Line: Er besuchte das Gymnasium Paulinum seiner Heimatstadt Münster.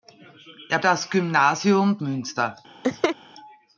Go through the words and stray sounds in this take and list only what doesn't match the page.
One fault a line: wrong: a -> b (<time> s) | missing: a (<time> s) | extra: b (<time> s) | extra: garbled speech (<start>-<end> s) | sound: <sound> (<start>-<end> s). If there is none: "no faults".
missing: besuchte (0.8 s)
missing: Paulinum seiner Heimatstadt (2.0 s)
sound: laugh (2.8-3.2 s)